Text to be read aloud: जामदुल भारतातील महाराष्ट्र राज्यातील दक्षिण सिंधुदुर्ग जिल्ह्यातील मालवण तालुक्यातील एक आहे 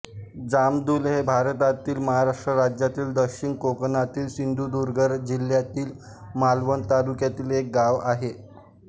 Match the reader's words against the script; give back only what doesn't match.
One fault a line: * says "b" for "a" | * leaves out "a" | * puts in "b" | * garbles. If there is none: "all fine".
* puts in "हे"
* puts in "कोकणातील"
* puts in "गाव"